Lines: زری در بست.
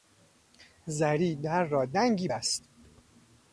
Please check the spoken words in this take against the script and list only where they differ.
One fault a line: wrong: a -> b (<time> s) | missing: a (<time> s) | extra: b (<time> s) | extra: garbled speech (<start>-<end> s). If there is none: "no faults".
extra: را دنگی (1.6 s)